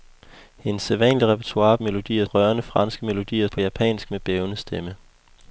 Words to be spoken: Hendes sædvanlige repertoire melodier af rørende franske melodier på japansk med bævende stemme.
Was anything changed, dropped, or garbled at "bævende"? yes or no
no